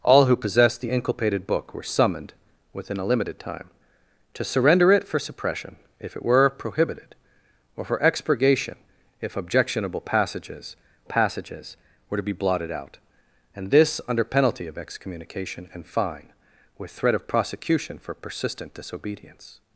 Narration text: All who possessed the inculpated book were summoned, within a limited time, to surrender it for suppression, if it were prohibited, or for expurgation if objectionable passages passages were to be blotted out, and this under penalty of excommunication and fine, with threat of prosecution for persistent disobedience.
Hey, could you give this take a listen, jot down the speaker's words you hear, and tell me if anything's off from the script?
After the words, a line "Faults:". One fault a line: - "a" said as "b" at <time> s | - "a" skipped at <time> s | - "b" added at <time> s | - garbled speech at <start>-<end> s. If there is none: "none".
All who possessed the inculpated book were summoned, within a limited time, to surrender it for suppression, if it were prohibited, or for expurgation if objectionable passages passages were to be blotted out, and this under penalty of excommunication and fine, with threat of prosecution for persistent disobedience.
Faults:
none